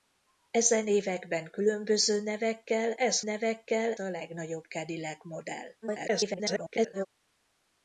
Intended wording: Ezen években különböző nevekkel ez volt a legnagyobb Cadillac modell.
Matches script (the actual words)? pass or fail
fail